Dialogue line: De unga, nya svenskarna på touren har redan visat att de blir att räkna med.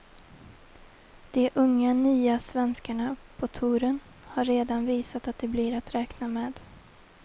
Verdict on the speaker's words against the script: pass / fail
pass